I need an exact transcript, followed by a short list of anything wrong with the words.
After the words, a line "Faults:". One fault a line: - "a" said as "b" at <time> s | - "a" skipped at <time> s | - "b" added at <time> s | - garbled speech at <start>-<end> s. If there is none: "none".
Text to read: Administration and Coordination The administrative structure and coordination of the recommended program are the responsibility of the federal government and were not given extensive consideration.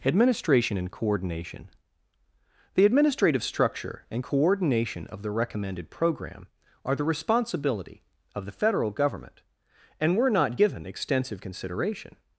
Administration and Coordination The administrative structure and coordination of the recommended program are the responsibility of the federal government and were not given extensive consideration.
Faults:
none